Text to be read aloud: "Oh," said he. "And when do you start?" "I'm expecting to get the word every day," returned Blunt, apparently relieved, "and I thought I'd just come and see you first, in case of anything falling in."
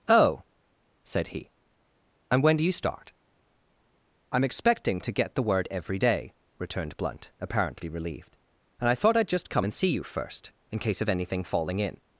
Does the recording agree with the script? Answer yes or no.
yes